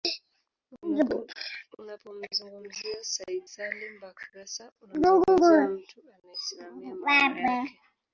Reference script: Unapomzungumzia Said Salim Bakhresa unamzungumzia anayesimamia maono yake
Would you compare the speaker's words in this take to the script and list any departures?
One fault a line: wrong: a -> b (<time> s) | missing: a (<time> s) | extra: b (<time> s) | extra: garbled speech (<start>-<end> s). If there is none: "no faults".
extra: mtu (5.7 s)